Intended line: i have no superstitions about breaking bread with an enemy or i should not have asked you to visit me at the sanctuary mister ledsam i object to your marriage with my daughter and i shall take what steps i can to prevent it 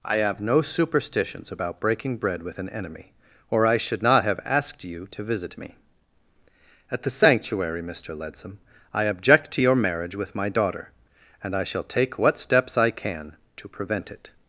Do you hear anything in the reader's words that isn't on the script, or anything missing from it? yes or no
no